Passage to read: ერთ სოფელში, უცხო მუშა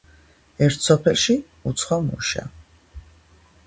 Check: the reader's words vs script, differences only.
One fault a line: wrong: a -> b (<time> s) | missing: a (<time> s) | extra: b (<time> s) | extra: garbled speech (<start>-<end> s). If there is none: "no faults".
no faults